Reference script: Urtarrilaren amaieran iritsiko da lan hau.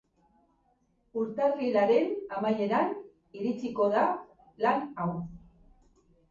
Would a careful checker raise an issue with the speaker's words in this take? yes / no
no